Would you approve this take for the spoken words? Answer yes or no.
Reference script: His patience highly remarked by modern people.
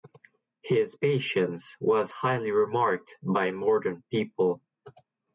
no